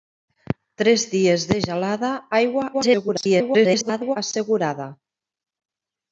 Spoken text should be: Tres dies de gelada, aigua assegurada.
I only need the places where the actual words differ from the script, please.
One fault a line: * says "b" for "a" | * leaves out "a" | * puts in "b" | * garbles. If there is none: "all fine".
* garbles